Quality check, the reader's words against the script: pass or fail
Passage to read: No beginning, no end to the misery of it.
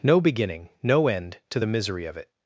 pass